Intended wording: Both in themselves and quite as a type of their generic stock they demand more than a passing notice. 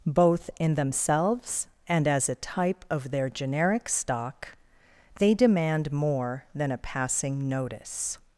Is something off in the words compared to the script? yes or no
yes